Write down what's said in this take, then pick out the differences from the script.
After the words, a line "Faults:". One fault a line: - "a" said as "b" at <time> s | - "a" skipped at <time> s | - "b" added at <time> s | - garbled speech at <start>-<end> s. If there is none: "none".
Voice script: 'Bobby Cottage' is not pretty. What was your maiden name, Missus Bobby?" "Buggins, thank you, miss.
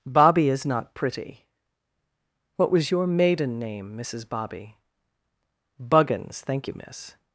'Bobby' is not pretty. What was your maiden name, Missus Bobby?" "Buggins, thank you, miss.
Faults:
- "Cottage" skipped at 0.5 s